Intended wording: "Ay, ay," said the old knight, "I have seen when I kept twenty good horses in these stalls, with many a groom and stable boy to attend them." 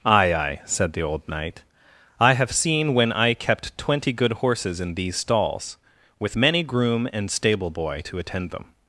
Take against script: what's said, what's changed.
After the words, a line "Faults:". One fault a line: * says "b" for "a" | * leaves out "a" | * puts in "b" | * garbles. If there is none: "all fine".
"Ay, ay," said the old knight, "I have seen when I kept twenty good horses in these stalls, with many groom and stable boy to attend them."
Faults:
* leaves out "a"